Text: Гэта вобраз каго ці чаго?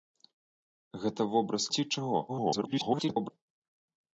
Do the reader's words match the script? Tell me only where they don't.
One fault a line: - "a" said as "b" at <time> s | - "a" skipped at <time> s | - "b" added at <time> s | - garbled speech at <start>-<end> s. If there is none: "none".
- "каго" skipped at 1.7 s
- garbled speech at 2.3-3.3 s